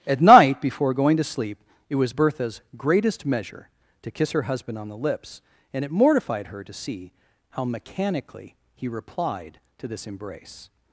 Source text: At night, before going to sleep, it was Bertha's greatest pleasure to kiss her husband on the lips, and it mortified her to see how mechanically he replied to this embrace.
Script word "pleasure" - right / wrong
wrong